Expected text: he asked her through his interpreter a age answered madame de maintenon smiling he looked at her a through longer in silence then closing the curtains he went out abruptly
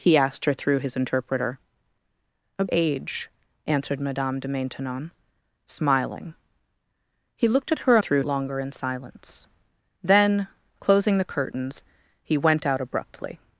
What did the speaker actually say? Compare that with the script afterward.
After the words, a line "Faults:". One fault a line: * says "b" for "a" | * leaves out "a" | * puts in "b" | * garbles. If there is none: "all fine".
he asked her through his interpreter a age answered madame de maintenon smiling he looked at her a through longer in silence then closing the curtains he went out abruptly
Faults:
all fine